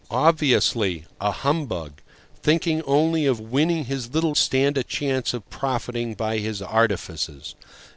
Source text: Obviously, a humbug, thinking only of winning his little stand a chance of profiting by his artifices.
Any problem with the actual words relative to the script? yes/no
no